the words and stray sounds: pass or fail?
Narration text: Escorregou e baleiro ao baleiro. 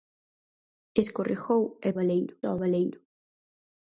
pass